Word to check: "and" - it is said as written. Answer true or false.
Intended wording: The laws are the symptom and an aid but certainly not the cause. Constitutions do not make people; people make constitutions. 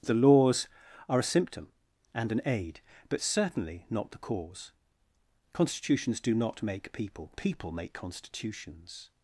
true